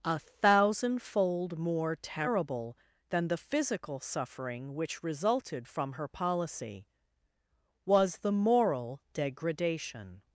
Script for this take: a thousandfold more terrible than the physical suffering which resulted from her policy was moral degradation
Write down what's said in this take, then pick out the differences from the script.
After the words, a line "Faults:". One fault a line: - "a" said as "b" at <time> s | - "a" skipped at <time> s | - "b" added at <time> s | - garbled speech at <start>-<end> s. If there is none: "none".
a thousandfold more terrible than the physical suffering which resulted from her policy was the moral degradation
Faults:
- "the" added at 8.2 s